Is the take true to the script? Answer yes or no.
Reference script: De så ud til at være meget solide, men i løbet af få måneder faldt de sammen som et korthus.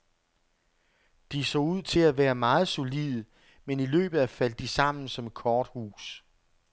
no